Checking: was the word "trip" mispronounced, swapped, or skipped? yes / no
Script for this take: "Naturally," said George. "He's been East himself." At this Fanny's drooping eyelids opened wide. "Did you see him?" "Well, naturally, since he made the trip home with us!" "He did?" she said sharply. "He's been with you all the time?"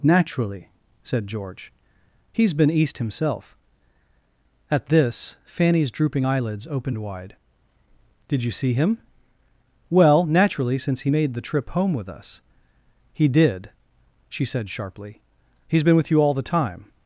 no